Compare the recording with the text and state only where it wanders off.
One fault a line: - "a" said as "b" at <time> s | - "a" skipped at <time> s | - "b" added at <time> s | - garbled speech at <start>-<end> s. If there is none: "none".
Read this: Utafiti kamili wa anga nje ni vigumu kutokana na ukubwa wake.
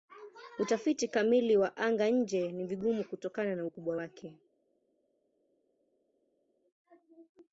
none